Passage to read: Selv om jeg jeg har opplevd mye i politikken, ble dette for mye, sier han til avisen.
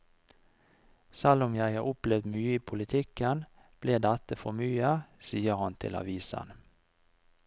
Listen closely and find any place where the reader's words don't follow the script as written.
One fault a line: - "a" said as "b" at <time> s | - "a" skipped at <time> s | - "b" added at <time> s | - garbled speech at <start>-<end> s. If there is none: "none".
- "jeg" skipped at 1.7 s